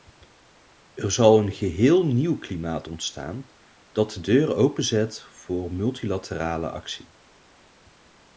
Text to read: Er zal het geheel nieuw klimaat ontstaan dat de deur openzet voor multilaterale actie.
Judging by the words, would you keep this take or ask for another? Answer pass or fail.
fail